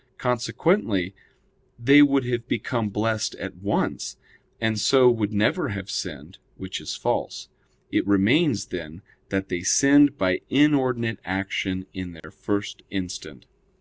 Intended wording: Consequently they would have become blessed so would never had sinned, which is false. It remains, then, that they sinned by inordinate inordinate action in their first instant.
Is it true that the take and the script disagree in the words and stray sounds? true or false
true